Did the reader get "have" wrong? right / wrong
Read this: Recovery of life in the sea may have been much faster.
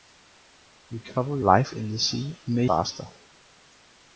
wrong